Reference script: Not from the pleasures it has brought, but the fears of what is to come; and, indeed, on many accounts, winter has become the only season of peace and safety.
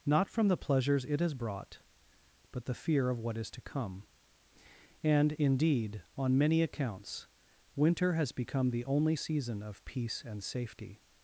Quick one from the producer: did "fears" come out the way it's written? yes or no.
no